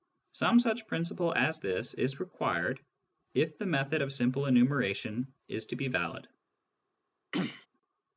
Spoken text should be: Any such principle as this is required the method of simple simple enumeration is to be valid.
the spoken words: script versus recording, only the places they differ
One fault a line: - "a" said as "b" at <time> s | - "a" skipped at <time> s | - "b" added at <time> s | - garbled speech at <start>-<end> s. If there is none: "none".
- "Any" said as "Some" at 0.3 s
- "if" added at 3.3 s
- "simple" skipped at 4.5 s